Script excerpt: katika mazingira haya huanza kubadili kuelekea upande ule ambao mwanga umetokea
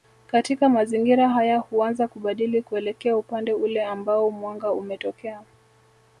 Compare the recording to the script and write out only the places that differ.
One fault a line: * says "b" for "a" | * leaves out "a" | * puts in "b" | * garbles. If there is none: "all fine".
all fine